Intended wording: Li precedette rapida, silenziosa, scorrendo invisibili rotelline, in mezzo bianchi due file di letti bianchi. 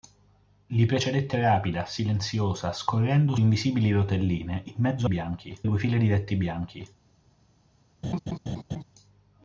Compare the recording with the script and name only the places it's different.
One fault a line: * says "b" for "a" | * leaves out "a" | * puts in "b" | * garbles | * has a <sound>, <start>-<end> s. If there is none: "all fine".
* has a laugh, 8.0-8.8 s